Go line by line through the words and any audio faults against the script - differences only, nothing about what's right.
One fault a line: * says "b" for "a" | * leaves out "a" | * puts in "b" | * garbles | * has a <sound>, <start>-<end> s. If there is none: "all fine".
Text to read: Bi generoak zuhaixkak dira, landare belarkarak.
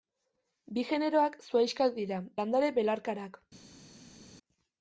all fine